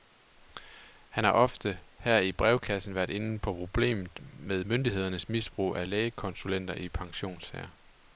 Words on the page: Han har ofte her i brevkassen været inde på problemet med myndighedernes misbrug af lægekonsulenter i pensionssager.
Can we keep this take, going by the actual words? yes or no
yes